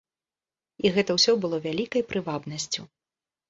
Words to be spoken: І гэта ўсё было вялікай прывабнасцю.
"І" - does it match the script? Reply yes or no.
yes